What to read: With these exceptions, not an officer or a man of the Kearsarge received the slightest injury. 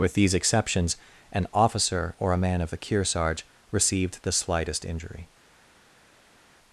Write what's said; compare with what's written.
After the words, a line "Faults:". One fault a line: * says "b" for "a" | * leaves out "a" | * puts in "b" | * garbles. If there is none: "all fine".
With these exceptions, an officer or a man of the Kearsarge received the slightest injury.
Faults:
* leaves out "not"